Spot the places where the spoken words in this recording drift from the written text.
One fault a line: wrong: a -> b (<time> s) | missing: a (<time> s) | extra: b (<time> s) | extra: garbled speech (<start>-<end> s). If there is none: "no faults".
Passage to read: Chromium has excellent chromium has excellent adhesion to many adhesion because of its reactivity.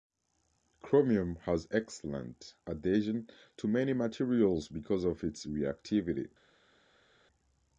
missing: chromium has excellent (2.5 s)
wrong: adhesion -> materials (3.9 s)